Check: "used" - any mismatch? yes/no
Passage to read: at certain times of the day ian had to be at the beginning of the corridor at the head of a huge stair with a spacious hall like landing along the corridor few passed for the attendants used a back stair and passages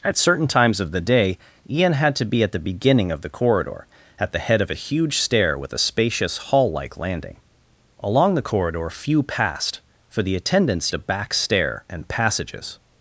yes